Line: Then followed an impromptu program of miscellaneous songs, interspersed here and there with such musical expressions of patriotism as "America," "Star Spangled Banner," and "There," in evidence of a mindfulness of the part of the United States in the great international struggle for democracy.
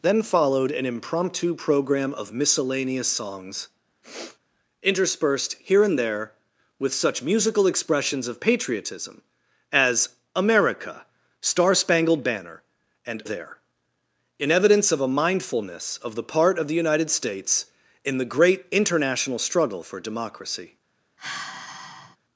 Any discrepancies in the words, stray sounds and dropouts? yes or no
yes